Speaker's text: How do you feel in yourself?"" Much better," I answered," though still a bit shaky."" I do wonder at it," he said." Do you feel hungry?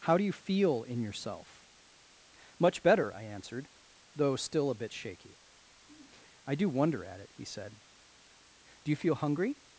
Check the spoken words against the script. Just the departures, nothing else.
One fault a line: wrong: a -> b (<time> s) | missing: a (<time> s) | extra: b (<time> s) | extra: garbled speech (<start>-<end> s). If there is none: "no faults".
no faults